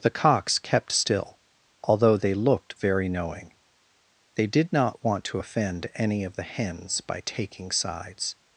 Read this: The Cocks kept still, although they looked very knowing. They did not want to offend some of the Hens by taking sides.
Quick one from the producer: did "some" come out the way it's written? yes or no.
no